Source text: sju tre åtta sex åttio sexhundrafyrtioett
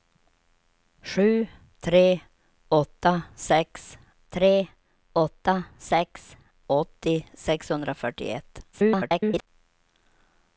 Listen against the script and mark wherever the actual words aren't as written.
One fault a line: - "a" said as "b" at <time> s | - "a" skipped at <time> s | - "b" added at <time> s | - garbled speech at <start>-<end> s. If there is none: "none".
- "tre åtta sex" added at 4.3 s
- garbled speech at 8.7-9.5 s